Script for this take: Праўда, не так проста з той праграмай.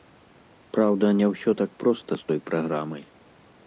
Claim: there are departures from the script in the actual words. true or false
true